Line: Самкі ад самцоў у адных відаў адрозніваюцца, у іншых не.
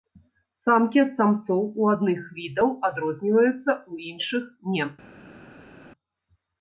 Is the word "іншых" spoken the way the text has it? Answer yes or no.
yes